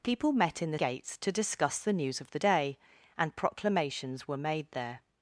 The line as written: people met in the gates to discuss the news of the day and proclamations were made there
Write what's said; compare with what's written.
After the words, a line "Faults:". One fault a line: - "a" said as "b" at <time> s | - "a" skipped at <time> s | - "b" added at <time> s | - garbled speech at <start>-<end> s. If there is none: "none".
people met in the gates to discuss the news of the day and proclamations were made there
Faults:
none